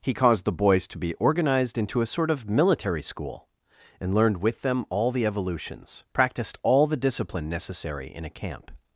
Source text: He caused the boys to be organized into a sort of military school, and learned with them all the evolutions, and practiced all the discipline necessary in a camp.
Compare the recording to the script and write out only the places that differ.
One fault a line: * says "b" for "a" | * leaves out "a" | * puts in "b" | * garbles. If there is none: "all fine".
* leaves out "and"